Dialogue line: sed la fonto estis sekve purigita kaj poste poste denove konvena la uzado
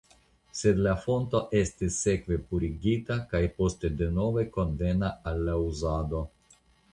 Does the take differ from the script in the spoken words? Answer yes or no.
yes